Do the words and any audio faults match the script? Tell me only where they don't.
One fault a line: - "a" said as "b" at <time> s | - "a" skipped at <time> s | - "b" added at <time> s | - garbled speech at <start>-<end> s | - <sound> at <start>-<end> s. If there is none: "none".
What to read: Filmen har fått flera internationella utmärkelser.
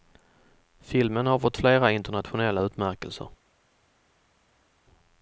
none